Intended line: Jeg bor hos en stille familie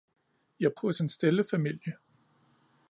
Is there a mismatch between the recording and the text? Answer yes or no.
yes